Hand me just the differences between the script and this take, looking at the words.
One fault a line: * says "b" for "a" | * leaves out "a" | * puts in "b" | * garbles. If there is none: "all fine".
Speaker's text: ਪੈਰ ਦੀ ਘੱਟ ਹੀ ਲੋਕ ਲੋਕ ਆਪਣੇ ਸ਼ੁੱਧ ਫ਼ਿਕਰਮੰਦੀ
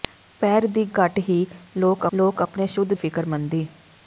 all fine